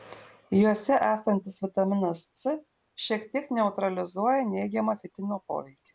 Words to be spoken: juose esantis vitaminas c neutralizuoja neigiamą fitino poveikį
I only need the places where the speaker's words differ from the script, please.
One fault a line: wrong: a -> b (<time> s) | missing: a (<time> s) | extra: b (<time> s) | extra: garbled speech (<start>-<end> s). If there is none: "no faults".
extra: šiek tiek (3.1 s)